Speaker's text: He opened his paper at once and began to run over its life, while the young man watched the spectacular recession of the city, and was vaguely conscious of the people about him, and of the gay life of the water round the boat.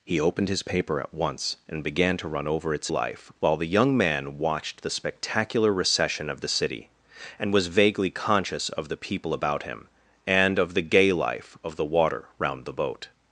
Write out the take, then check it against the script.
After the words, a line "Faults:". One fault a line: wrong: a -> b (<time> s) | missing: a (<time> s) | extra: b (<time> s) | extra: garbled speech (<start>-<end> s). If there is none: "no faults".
He opened his paper at once and began to run over its life, while the young man watched the spectacular recession of the city, and was vaguely conscious of the people about him, and of the gay life of the water round the boat.
Faults:
no faults